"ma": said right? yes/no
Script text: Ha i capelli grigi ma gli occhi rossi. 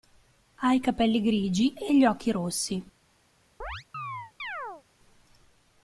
no